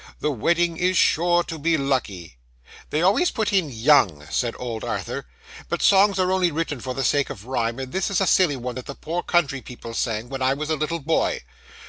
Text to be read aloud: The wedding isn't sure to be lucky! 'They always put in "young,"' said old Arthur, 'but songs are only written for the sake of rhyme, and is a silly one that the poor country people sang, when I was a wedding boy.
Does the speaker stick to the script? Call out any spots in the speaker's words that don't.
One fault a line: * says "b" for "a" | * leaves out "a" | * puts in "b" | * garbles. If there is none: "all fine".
* says "is" for "isn't"
* puts in "this"
* says "little" for "wedding"